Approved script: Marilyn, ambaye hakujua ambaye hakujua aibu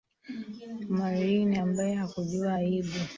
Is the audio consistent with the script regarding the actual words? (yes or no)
no